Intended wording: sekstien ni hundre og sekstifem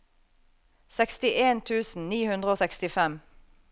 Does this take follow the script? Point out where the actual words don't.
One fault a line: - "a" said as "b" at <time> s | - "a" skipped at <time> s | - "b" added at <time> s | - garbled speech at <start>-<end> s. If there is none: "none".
- "tusen" added at 1.7 s